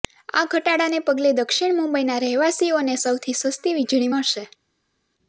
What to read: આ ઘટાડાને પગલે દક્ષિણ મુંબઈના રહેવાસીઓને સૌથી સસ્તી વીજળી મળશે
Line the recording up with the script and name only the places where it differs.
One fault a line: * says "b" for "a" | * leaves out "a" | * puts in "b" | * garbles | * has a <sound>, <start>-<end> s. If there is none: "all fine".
all fine